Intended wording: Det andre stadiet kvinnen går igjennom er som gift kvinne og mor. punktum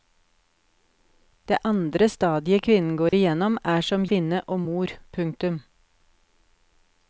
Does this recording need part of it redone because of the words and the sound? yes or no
yes